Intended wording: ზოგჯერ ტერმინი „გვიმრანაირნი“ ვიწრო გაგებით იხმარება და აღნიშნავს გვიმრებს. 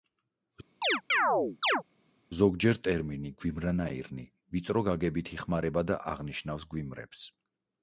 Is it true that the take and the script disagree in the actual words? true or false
false